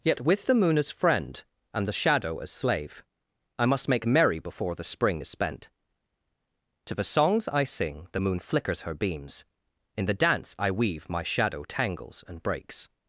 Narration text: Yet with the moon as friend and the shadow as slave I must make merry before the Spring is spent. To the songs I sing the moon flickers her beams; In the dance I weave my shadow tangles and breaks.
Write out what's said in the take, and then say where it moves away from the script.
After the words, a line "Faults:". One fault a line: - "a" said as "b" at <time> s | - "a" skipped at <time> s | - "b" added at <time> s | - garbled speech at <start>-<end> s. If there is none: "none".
Yet with the moon as friend and the shadow as slave I must make merry before the Spring is spent. To the songs I sing the moon flickers her beams; In the dance I weave my shadow tangles and breaks.
Faults:
none